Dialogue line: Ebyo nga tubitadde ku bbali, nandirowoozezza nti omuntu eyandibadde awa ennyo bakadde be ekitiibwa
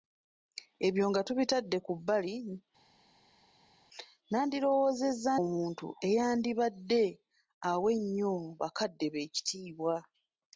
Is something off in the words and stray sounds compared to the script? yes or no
yes